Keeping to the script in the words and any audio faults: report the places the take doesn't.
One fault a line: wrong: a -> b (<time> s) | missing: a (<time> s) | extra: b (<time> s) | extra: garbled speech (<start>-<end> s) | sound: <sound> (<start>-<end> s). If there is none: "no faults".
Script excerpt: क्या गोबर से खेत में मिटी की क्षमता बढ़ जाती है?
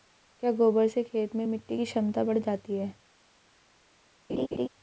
sound: laugh (4.3-4.7 s)